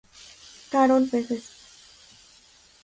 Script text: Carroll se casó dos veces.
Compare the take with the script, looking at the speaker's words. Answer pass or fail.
fail